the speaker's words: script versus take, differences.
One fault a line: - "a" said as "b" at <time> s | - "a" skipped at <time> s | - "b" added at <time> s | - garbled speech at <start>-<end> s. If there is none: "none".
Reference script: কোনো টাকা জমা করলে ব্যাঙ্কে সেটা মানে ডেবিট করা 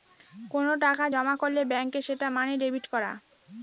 none